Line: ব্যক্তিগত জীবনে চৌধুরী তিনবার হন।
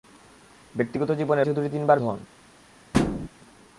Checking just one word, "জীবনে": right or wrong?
right